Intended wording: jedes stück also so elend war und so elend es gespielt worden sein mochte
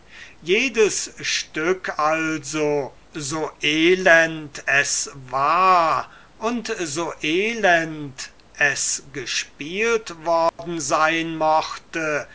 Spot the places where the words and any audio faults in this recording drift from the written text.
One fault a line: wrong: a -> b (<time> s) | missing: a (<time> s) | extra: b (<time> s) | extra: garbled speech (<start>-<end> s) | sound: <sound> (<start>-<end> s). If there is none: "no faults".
extra: es (4.6 s)
sound: dropout (10.5-10.6 s)